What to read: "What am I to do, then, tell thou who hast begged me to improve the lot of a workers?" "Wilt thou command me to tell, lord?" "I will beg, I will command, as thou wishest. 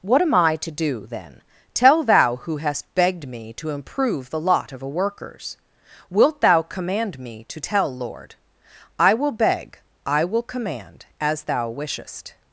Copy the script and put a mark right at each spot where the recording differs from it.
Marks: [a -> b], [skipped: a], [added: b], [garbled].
"What am I to do, then, tell thou who hast begged me to improve the lot of a workers?" "Wilt thou command me to tell, lord?" "I will beg, I will command, as thou wishest.